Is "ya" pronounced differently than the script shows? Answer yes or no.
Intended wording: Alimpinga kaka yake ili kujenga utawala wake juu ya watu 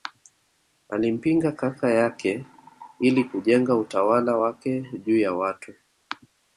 no